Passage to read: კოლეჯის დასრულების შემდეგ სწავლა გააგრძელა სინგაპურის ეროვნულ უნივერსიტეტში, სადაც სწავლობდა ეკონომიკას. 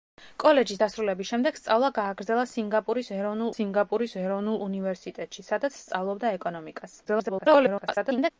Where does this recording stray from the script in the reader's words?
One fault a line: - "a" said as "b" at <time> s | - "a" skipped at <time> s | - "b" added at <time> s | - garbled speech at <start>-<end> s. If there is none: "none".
- "სინგაპურის ეროვნულ" added at 3.5 s
- garbled speech at 7.0-8.3 s